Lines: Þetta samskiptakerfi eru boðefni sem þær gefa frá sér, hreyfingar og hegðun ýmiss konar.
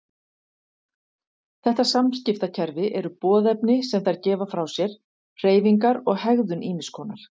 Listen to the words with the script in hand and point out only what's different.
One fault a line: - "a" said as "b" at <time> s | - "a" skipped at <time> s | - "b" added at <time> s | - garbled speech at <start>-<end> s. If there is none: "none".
none